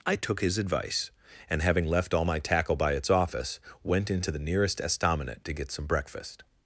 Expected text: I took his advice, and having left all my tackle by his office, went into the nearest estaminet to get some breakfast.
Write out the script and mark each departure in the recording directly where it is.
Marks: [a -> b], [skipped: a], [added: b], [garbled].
I took his advice, and having left all my tackle by [his -> its] office, went into the nearest estaminet to get some breakfast.